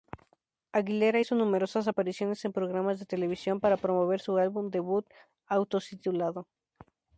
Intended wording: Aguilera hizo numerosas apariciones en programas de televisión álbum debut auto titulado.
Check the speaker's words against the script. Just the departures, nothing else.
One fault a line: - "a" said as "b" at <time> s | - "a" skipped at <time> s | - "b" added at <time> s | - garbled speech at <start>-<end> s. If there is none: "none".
- "para promover su" added at 3.6 s